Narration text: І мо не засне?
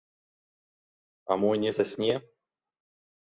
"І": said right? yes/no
no